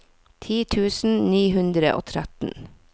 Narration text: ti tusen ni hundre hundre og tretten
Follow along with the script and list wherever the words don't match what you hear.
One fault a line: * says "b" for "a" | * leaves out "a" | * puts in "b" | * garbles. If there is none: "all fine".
* leaves out "hundre"